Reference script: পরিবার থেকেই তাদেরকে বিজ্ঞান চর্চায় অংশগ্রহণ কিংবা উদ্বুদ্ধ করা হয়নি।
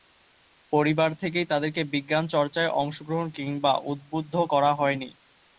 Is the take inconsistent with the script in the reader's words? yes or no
no